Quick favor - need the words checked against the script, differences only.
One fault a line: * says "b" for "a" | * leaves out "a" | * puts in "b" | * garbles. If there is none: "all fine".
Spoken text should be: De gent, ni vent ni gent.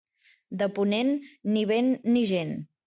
* says "ponent" for "gent"